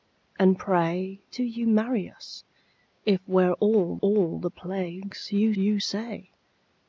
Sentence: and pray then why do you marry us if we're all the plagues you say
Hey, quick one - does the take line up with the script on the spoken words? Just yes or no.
no